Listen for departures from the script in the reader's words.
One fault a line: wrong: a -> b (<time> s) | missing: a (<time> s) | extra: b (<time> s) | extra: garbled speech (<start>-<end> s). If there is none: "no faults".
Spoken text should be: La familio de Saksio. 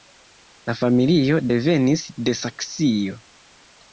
extra: devenis (1.5 s)